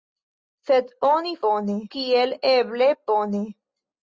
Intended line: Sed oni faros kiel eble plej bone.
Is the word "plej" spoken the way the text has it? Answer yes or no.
no